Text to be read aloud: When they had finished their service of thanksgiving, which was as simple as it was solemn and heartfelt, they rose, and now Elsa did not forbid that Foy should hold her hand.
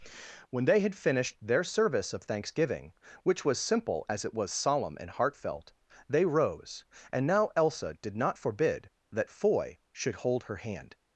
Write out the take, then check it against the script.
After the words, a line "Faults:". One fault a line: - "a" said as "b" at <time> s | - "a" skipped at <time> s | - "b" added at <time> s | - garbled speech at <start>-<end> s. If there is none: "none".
When they had finished their service of thanksgiving, which was simple as it was solemn and heartfelt, they rose, and now Elsa did not forbid that Foy should hold her hand.
Faults:
- "as" skipped at 3.6 s